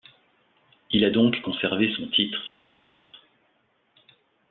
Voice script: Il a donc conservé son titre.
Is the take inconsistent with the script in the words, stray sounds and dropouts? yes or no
no